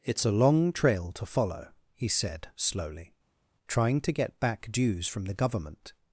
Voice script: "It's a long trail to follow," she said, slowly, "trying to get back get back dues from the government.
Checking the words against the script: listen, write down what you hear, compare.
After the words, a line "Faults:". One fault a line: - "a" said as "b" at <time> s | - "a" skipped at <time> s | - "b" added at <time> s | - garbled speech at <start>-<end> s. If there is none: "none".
"It's a long trail to follow," he said, slowly, "trying to get back dues from the government.
Faults:
- "she" said as "he" at 1.9 s
- "get back" skipped at 4.7 s